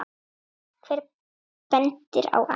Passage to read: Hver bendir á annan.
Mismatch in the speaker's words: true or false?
false